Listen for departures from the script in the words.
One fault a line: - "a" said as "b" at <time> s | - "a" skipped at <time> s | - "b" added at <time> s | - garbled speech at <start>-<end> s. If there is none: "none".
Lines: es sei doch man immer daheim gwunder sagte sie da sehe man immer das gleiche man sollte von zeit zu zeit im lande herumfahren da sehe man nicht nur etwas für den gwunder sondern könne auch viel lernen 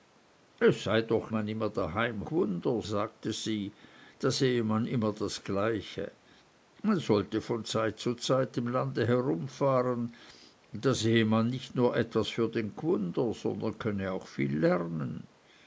none